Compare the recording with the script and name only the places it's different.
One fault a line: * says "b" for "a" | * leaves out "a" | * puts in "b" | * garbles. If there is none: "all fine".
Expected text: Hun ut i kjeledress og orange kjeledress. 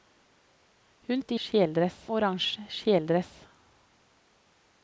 all fine